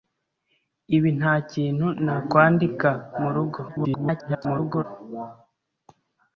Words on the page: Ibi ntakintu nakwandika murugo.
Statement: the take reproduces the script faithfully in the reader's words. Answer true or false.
false